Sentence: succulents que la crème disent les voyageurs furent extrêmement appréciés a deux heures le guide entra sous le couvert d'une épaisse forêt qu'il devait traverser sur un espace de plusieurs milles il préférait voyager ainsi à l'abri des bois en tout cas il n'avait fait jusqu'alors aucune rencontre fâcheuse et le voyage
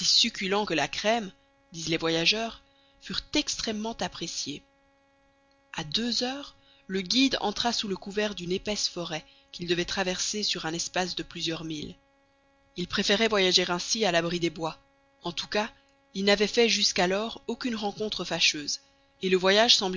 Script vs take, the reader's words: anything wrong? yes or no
no